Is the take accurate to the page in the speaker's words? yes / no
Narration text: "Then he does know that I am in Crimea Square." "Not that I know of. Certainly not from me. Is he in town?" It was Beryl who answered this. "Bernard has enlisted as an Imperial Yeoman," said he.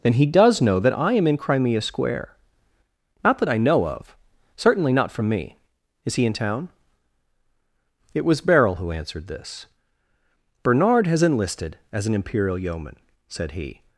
yes